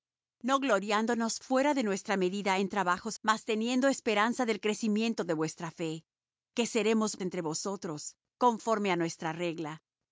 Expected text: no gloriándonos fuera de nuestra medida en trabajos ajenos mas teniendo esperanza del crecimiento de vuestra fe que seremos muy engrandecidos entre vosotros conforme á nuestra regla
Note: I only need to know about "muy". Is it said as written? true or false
false